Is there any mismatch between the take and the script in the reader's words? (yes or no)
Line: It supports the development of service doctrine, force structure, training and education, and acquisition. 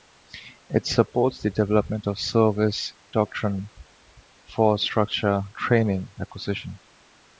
yes